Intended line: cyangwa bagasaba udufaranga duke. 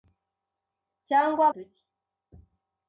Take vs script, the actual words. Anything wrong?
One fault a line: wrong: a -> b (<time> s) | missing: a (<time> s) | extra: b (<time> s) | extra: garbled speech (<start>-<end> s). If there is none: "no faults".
missing: bagasaba udufaranga (1.4 s)